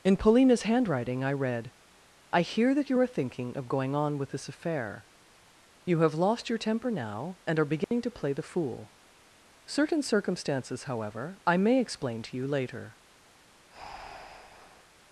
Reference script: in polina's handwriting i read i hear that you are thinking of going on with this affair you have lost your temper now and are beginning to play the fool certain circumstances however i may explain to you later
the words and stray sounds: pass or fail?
fail